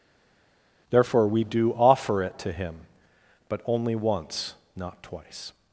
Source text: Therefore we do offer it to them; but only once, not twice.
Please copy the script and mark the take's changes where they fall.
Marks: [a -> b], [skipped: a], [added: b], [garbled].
Therefore we do offer it to [them; -> him] but only once, not twice.